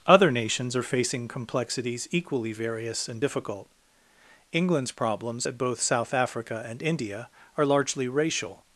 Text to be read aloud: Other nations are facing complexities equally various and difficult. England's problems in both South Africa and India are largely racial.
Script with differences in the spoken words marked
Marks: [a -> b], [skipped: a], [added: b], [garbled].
Other nations are facing complexities equally various and difficult. England's problems [in -> at] both South Africa and India are largely racial.